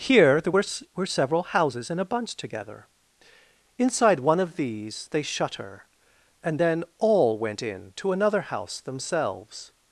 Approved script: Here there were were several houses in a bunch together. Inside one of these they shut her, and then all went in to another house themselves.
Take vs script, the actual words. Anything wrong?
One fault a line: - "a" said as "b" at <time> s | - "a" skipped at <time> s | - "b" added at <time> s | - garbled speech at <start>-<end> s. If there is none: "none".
none